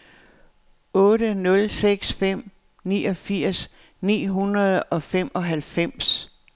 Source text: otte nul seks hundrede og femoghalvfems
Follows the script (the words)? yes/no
no